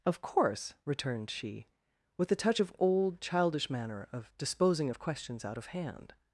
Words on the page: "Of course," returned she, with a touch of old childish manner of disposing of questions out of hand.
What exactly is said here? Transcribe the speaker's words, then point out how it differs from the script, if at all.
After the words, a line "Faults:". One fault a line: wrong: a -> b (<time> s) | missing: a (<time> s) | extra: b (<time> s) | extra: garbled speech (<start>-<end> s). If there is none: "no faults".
"Of course," returned she, with a touch of old childish manner of disposing of questions out of hand.
Faults:
no faults